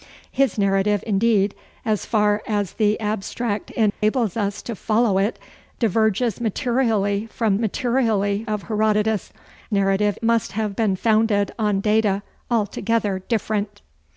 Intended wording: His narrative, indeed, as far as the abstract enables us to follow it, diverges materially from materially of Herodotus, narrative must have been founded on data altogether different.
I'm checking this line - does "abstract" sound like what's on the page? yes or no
yes